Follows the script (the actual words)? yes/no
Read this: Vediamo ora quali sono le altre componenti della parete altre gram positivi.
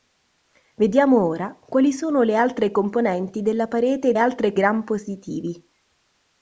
yes